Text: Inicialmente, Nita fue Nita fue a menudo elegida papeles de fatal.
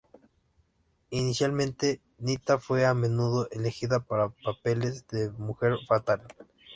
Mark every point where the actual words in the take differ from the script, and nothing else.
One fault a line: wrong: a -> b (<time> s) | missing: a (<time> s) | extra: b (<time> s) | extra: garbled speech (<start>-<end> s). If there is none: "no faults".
missing: Nita fue (2.9 s)
extra: para (4.0 s)
extra: mujer (5.3 s)